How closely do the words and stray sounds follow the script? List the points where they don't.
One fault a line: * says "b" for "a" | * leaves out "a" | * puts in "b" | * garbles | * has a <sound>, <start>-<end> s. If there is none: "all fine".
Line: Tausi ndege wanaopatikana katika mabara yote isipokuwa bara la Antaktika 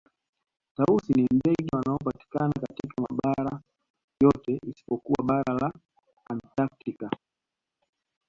* puts in "ni"